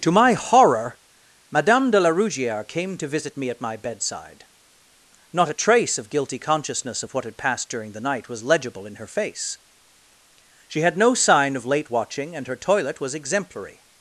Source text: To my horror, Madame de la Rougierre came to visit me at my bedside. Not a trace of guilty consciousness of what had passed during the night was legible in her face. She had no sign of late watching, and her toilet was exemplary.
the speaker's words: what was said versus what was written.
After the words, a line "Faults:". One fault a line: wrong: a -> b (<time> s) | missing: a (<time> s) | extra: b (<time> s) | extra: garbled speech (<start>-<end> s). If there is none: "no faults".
To my horror, Madame de la Rougierre came to visit me at my bedside. Not a trace of guilty consciousness of what had passed during the night was legible in her face. She had no sign of late watching, and her toilet was exemplary.
Faults:
no faults